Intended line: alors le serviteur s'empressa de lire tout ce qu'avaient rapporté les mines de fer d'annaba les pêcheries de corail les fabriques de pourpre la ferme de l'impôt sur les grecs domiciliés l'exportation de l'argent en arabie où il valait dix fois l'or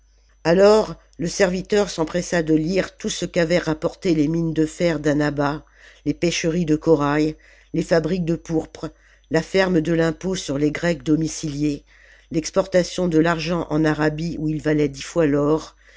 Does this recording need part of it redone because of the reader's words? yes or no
no